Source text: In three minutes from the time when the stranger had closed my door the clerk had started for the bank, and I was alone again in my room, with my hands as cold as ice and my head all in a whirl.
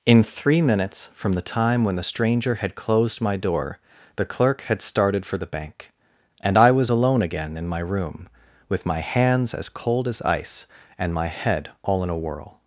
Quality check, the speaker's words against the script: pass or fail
pass